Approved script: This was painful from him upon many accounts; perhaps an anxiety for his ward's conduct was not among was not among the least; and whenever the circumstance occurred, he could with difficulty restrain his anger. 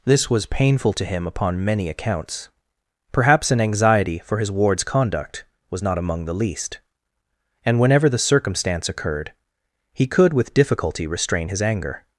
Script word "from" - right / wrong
wrong